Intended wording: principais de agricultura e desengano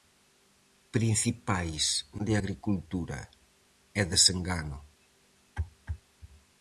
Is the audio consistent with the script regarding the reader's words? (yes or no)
yes